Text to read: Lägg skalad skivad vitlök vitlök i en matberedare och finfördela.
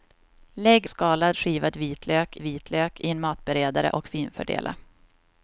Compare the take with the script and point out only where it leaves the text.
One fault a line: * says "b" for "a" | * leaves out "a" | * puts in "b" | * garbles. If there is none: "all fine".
all fine